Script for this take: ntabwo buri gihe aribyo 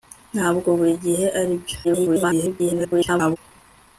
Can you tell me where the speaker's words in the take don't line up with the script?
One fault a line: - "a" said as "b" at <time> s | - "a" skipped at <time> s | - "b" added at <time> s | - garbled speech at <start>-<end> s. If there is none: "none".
- garbled speech at 1.8-3.4 s